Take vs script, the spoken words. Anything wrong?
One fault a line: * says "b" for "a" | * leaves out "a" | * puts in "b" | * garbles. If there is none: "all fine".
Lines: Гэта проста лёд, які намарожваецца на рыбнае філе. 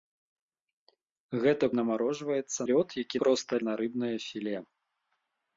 * says "намарожваецца" for "проста"
* says "проста" for "намарожваецца"